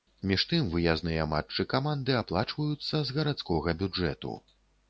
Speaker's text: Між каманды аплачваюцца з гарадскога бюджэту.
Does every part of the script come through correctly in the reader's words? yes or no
no